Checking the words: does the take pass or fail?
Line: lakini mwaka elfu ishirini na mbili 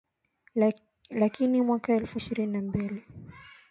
pass